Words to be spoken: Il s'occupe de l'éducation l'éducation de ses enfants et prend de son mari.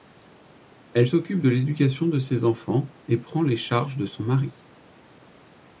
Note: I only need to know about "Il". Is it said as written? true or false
false